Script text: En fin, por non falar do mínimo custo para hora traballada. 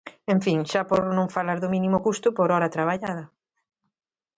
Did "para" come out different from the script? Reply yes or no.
yes